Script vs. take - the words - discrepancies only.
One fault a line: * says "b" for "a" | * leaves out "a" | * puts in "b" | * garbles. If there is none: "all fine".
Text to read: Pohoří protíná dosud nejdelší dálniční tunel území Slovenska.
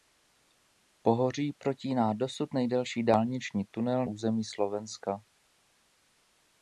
all fine